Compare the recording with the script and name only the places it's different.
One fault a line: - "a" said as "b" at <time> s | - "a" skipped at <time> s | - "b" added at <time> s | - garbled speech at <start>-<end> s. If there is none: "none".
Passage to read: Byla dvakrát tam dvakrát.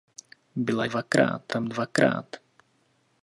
none